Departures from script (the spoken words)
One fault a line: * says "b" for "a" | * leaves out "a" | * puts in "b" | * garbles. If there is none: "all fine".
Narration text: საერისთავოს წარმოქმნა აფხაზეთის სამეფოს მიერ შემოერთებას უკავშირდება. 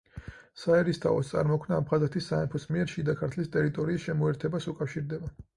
* puts in "შიდა ქართლის ტერიტორიის"